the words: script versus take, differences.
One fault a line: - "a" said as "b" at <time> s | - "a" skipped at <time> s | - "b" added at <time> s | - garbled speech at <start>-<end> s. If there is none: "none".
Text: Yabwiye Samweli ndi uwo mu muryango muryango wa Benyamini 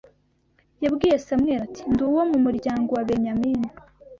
- "ati" added at 1.6 s
- "muryango" skipped at 2.9 s